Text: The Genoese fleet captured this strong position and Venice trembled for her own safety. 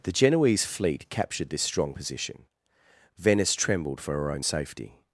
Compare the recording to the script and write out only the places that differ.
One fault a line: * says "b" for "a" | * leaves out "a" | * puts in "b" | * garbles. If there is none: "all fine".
* leaves out "and"